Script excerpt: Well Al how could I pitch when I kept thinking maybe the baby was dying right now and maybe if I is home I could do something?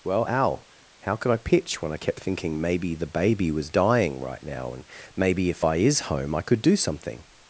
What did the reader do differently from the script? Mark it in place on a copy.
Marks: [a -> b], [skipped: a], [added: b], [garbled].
Well Al how could I pitch when I kept thinking maybe the baby was dying right now and maybe if I is home I could do something?